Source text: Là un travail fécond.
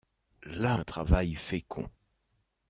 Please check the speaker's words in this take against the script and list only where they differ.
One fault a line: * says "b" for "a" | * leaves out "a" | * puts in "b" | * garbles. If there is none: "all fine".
all fine